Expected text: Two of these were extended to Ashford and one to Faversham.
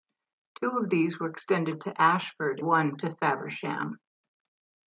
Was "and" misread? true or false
true